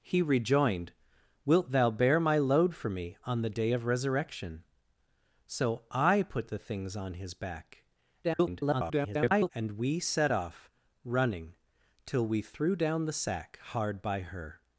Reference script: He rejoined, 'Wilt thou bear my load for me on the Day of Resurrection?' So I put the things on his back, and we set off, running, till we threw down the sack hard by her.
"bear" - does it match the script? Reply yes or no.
yes